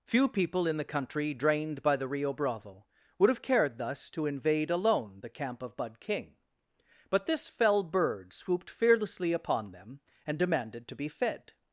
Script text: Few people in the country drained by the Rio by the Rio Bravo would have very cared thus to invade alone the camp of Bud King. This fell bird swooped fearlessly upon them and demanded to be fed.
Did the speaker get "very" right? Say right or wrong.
wrong